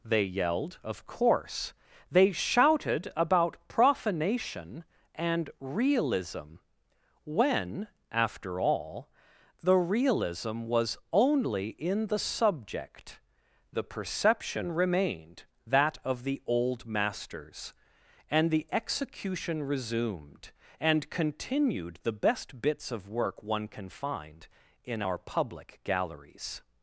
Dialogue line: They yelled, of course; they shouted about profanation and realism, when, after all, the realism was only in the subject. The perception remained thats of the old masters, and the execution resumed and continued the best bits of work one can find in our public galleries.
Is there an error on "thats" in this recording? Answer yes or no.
yes